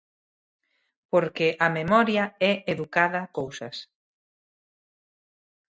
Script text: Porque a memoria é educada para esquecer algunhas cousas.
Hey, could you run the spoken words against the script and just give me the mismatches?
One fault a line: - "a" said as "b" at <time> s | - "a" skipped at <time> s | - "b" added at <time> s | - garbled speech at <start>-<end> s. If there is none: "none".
- "para esquecer algunhas" skipped at 3.2 s